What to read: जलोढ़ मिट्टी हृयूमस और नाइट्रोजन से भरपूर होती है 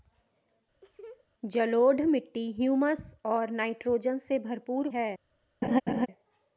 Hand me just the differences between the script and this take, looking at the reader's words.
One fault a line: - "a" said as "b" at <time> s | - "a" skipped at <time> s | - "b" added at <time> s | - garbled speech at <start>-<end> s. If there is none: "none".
- "होती" skipped at 4.9 s